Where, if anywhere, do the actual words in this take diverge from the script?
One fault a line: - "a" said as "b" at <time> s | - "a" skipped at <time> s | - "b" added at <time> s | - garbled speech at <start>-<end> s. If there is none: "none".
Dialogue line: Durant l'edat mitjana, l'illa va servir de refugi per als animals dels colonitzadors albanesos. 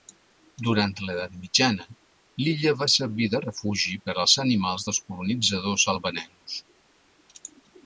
none